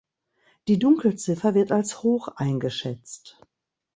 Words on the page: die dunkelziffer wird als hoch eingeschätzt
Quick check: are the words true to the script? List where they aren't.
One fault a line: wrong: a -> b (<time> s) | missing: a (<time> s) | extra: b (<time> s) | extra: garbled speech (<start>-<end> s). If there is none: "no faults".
no faults